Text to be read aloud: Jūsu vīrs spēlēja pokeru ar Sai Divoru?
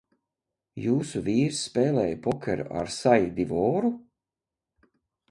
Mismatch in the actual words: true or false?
false